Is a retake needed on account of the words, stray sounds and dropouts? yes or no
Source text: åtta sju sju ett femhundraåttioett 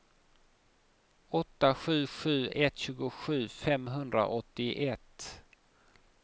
yes